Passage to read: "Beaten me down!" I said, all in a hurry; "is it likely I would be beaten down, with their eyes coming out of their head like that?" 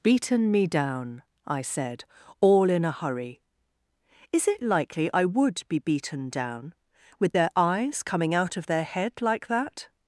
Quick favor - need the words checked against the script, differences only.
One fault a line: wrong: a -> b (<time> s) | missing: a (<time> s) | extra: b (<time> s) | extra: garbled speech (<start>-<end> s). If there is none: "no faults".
no faults